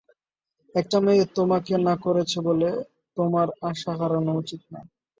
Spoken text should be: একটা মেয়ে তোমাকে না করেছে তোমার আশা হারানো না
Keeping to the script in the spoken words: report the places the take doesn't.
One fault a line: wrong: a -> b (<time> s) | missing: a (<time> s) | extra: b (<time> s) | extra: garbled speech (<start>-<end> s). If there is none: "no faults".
extra: বলে (2.5 s)
extra: উচিত (4.4 s)